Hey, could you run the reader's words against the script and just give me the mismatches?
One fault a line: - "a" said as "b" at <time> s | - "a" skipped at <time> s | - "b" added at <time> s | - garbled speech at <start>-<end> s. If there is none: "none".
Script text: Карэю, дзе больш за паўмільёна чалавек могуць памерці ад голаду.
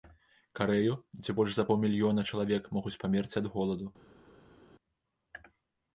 none